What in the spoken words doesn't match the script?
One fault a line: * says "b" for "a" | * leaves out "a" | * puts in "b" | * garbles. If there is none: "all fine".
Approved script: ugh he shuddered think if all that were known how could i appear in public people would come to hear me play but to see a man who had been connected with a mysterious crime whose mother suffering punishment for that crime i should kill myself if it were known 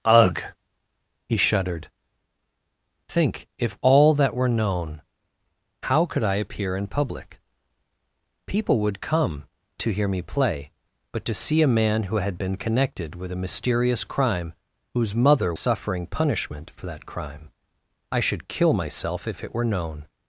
all fine